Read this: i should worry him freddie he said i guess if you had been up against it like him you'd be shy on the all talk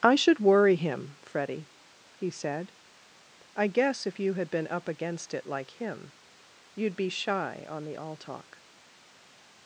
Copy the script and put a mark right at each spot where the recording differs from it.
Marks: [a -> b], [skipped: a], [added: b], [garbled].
i should worry him freddie he said i guess if you had been up against it like him you'd be shy on the all talk